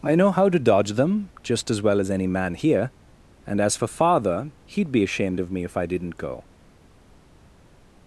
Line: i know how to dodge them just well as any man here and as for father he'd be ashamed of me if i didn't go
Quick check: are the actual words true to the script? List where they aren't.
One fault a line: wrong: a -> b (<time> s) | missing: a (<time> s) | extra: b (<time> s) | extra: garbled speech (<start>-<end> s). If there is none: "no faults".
extra: as (1.7 s)